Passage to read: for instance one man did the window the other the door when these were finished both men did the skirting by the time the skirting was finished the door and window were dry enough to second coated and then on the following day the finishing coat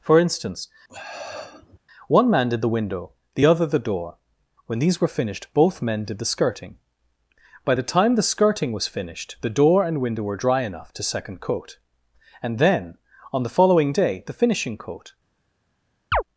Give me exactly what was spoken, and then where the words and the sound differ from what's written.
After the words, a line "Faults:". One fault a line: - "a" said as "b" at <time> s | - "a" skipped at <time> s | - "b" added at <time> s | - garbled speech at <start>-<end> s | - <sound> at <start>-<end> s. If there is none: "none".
for instance one man did the window the other the door when these were finished both men did the skirting by the time the skirting was finished the door and window were dry enough to second coat and then on the following day the finishing coat
Faults:
- sniff at 0.9-1.8 s
- "coated" said as "coat" at 11.4 s
- chirp at 16.1-16.2 s